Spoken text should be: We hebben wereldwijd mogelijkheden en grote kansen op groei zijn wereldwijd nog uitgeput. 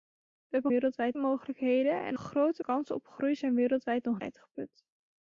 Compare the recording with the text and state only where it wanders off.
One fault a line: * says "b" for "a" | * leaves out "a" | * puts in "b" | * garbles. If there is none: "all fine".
all fine